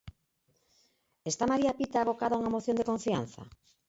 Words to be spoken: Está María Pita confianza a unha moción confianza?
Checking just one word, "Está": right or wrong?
right